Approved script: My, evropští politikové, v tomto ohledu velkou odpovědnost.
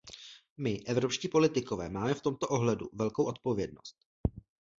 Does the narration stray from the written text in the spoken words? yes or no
yes